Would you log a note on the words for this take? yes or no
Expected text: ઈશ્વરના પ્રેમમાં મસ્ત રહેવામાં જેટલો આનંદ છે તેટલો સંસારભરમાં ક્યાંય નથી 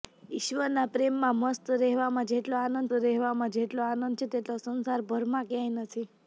yes